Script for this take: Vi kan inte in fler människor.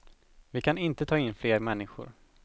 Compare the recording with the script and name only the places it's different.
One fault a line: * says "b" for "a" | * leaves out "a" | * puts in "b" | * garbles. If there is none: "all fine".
* puts in "ta"